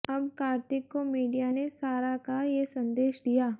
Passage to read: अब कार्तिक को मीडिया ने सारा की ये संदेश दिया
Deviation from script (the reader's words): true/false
true